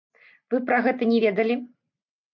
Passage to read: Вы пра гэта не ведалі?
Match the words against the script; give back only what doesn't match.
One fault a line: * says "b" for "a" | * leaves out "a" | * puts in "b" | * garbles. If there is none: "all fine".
all fine